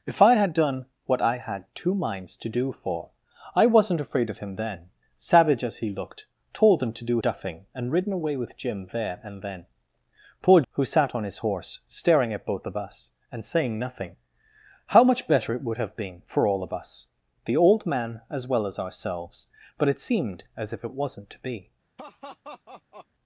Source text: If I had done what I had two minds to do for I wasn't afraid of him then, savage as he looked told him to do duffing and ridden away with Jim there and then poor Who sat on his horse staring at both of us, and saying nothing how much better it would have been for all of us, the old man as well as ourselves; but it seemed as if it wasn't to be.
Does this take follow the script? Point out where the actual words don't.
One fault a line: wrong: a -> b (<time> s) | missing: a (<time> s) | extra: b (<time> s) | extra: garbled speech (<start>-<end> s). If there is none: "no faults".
no faults